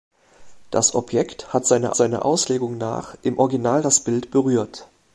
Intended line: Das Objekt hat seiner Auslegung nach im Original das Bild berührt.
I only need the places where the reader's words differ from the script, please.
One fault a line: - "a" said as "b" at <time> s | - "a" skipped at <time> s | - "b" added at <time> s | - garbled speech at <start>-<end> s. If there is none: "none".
- "seiner" added at 2.0 s